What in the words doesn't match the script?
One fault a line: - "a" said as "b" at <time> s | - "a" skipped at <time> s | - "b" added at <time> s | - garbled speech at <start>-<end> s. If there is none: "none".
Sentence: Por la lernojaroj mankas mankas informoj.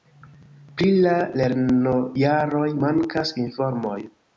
- "Por" said as "Pri" at 0.8 s
- "mankas" skipped at 3.4 s